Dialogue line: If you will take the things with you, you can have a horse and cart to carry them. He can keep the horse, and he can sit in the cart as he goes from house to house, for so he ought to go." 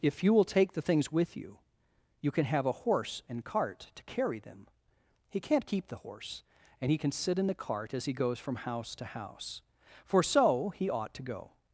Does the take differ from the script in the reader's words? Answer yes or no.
yes